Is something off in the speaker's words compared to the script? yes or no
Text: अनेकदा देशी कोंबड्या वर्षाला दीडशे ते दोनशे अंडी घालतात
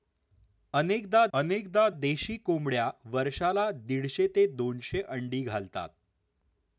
yes